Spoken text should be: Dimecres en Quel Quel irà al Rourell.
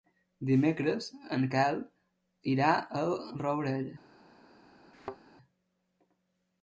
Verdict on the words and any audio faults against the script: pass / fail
fail